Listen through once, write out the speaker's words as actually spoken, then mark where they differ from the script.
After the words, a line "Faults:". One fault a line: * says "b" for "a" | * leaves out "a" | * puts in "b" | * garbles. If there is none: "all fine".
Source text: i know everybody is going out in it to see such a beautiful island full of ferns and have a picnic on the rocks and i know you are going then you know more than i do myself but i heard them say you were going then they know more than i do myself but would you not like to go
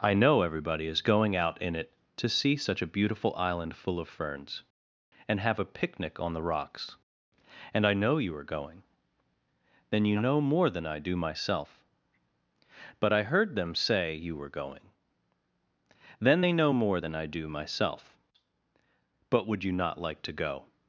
i know everybody is going out in it to see such a beautiful island full of ferns and have a picnic on the rocks and i know you are going then you know more than i do myself but i heard them say you were going then they know more than i do myself but would you not like to go
Faults:
all fine